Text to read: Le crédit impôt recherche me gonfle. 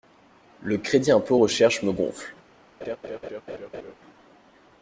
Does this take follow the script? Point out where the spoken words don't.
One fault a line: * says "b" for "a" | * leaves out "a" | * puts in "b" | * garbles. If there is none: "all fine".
all fine